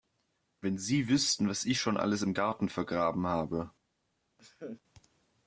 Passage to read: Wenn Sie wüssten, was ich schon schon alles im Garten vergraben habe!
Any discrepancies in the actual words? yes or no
yes